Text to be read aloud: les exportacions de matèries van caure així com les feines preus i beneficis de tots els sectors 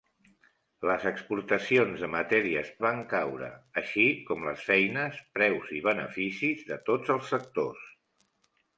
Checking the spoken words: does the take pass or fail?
pass